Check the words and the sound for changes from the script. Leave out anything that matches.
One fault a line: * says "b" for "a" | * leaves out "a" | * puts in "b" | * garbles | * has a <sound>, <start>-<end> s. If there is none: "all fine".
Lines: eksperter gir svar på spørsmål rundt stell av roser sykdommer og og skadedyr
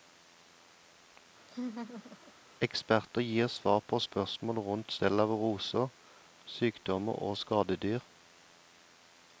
* has a laugh, 1.5-2.3 s
* leaves out "og"